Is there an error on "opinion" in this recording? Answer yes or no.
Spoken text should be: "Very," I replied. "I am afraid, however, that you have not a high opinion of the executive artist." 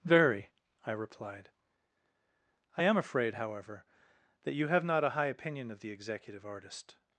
no